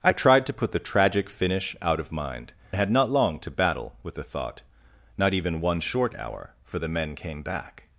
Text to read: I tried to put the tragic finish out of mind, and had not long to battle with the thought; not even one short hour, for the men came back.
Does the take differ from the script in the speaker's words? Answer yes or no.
yes